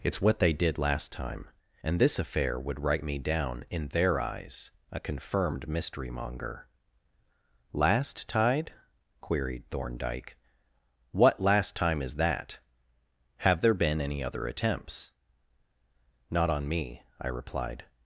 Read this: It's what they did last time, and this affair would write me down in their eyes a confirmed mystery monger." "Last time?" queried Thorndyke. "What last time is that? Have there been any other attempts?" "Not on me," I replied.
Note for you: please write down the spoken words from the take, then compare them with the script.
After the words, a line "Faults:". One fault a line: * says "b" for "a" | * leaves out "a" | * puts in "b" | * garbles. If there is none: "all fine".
It's what they did last time, and this affair would write me down in their eyes a confirmed mystery monger." "Last tide?" queried Thorndyke. "What last time is that? Have there been any other attempts?" "Not on me," I replied.
Faults:
* says "tide" for "time"